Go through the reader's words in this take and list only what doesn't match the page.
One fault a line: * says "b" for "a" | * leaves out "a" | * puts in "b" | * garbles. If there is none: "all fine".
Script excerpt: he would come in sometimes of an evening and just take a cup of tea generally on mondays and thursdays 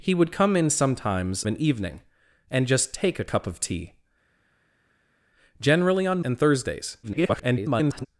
* leaves out "of"
* leaves out "mondays"
* garbles